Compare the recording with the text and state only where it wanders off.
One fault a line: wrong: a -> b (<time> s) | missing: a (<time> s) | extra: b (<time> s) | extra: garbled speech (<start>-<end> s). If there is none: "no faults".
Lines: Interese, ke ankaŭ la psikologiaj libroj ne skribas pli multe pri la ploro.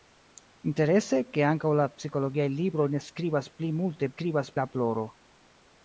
wrong: pri -> skribas (4.1 s)